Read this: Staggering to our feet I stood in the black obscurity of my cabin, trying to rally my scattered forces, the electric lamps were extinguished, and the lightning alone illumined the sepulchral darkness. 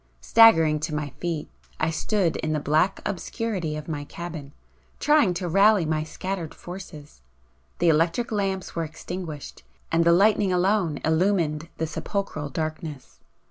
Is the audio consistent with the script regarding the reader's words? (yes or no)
no